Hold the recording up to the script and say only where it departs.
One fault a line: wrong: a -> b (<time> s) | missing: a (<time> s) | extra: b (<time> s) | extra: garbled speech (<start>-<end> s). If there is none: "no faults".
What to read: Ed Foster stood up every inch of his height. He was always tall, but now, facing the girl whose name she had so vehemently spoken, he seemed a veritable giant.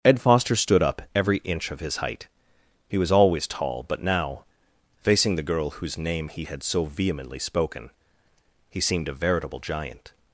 wrong: she -> he (6.3 s)